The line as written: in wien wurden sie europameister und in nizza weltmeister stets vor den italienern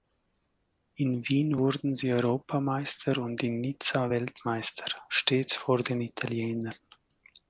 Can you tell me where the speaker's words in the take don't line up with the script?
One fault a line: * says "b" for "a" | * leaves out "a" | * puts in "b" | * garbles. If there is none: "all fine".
all fine